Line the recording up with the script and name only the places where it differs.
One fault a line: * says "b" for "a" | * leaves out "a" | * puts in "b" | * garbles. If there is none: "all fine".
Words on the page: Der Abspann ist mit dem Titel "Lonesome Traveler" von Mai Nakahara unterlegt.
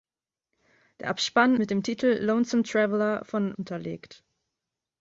* leaves out "ist"
* leaves out "Mai Nakahara"